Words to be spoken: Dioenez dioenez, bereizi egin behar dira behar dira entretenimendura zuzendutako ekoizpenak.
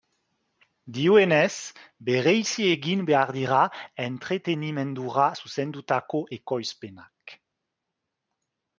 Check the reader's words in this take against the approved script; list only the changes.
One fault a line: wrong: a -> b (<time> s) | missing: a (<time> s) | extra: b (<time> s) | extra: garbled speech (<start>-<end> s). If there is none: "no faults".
missing: dioenez (1.7 s)
missing: behar dira (3.6 s)